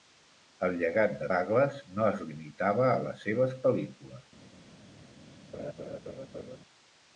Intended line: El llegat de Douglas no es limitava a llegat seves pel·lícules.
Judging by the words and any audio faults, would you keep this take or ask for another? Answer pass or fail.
fail